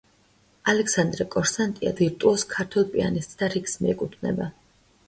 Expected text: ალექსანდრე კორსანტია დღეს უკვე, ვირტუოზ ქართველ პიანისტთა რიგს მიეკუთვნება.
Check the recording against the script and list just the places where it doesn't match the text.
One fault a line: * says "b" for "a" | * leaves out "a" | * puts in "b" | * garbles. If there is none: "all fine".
* leaves out "დღეს უკვე"